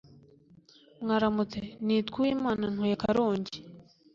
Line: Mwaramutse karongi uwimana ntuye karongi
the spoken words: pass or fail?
fail